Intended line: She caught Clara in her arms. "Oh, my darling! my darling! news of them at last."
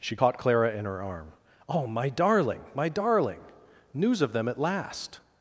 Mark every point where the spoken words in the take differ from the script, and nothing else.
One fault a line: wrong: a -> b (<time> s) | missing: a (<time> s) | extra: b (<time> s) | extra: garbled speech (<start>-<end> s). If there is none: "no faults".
wrong: arms -> arm (1.0 s)